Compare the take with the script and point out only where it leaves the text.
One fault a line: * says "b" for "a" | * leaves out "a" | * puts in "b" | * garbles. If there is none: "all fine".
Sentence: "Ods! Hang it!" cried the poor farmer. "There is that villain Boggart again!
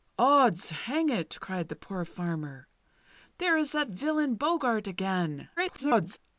* garbles